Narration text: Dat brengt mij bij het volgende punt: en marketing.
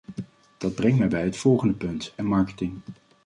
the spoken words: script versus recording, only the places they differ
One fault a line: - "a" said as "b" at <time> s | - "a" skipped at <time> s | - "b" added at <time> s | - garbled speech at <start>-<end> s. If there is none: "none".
none